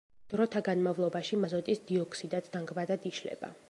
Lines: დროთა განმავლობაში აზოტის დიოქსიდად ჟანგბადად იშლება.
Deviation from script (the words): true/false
false